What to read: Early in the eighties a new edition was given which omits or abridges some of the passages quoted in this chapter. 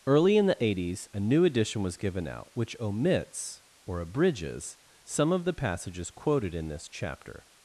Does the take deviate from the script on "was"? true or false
false